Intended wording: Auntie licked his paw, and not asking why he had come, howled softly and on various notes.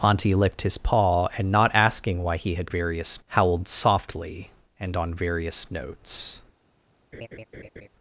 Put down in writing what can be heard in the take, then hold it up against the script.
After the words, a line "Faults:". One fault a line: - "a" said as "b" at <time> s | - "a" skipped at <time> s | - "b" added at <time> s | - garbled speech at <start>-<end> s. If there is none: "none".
Auntie licked his paw, and not asking why he had various, howled softly and on various notes.
Faults:
- "come" said as "various" at 2.7 s